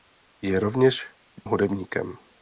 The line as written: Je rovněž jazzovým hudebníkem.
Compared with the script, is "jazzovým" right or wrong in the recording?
wrong